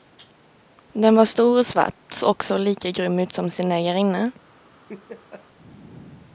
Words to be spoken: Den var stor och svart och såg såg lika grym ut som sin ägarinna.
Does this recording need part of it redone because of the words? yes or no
yes